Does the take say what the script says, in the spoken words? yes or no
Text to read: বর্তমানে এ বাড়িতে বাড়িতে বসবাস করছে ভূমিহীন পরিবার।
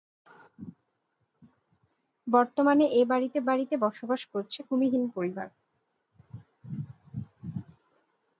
yes